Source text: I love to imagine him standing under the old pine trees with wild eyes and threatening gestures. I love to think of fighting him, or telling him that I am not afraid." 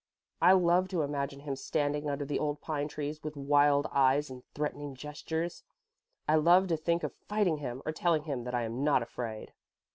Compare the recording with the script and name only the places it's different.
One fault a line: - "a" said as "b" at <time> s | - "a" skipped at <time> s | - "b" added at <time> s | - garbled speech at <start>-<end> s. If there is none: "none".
none